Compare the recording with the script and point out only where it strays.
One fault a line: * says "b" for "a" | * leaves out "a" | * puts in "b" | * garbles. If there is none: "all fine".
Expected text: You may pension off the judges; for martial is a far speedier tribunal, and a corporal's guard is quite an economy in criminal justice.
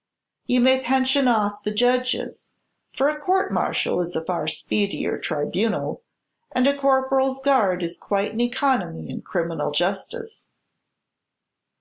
* puts in "a court"